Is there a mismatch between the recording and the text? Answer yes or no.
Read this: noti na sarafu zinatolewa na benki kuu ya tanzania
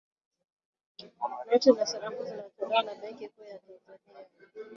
no